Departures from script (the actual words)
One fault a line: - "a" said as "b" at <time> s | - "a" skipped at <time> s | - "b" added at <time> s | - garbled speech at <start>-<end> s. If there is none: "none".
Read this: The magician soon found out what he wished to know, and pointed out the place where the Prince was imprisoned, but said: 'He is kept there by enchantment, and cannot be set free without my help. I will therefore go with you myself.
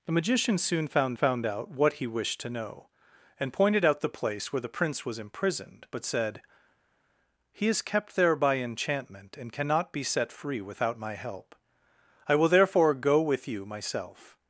- "found" added at 1.1 s